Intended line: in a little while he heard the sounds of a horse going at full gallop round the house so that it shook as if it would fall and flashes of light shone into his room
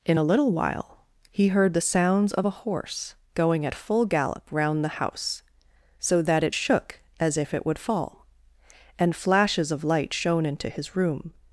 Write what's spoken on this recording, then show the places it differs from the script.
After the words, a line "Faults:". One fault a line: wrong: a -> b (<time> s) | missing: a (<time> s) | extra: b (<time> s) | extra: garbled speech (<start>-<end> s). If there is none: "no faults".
in a little while he heard the sounds of a horse going at full gallop round the house so that it shook as if it would fall and flashes of light shone into his room
Faults:
no faults